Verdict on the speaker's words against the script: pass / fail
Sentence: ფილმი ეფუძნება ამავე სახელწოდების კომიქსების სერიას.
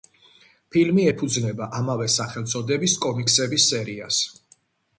pass